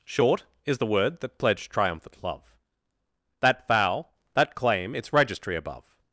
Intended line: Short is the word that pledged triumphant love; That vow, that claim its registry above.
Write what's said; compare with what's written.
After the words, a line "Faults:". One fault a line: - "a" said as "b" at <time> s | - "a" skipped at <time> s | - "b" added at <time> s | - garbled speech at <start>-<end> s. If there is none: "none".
Short is the word that pledged triumphant love; That vow, that claim its registry above.
Faults:
none